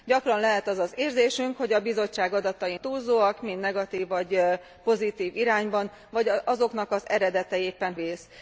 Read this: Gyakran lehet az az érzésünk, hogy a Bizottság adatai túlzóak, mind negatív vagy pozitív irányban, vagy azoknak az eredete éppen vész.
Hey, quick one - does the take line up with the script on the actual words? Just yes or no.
yes